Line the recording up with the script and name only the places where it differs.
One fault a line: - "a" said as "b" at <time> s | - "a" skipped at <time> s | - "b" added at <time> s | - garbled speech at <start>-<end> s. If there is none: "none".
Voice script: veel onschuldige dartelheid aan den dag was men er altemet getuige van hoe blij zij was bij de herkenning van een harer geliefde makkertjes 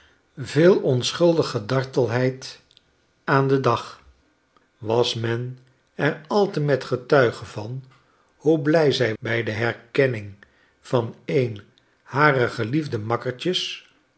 - "was" skipped at 9.2 s